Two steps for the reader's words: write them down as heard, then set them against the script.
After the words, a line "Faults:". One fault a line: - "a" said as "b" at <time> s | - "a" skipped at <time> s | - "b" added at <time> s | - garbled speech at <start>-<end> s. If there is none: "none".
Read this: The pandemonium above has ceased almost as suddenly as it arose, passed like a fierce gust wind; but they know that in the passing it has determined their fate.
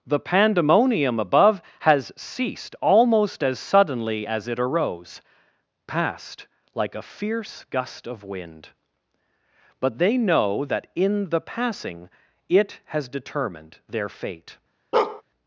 The pandemonium above has ceased almost as suddenly as it arose, passed like a fierce gust of wind; but they know that in the passing it has determined their fate.
Faults:
- "of" added at 8.1 s